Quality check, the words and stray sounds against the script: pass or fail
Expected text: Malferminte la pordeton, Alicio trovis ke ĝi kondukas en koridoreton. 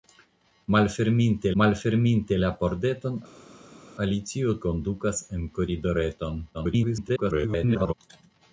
fail